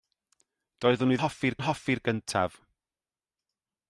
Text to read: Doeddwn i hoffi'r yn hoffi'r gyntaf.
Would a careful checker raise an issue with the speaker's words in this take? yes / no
no